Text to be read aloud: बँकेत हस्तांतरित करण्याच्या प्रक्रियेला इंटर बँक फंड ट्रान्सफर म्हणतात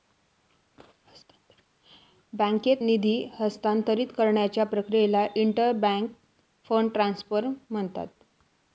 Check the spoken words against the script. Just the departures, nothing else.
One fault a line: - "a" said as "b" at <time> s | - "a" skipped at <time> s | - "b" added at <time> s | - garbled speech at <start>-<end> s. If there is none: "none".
- "निधी" added at 2.8 s